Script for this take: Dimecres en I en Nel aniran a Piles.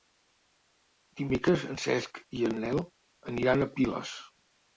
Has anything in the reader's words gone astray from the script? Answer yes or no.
yes